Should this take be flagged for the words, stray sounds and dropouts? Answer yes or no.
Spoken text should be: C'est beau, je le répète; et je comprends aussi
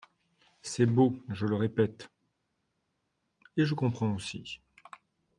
no